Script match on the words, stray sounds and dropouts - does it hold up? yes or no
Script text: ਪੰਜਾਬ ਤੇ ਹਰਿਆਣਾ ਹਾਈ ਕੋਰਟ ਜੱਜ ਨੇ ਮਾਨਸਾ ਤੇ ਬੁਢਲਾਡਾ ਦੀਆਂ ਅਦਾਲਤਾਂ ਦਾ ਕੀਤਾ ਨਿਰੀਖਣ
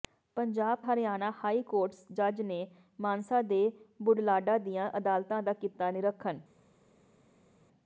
no